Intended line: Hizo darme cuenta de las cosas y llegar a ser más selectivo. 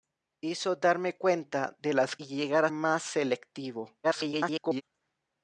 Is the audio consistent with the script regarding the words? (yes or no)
no